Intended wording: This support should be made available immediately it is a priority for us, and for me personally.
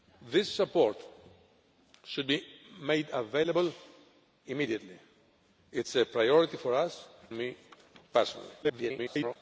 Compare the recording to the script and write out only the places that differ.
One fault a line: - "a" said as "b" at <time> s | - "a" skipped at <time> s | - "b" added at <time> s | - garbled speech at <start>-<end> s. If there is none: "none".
- "and for" skipped at 7.1 s
- garbled speech at 8.6-9.4 s